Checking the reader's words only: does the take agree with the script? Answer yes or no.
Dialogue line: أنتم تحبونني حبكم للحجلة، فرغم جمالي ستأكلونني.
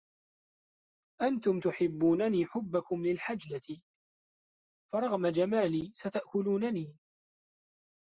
yes